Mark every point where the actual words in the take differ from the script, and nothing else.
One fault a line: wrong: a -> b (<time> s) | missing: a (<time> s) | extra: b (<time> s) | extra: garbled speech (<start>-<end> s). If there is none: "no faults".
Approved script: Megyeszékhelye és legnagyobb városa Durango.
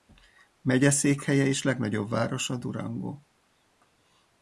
no faults